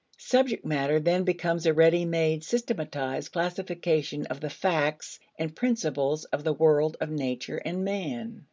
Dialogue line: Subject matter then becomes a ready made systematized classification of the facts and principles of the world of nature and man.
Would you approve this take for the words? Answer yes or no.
yes